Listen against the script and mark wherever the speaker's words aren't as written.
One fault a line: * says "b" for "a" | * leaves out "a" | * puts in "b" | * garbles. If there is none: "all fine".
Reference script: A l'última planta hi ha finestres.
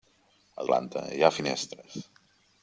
* leaves out "l'última"